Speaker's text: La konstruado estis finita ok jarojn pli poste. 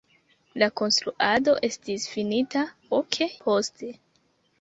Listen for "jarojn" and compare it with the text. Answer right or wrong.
wrong